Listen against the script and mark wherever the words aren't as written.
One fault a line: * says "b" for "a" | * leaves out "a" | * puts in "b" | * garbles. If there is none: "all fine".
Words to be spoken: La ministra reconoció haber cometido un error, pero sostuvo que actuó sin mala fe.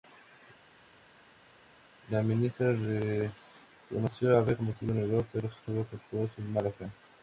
all fine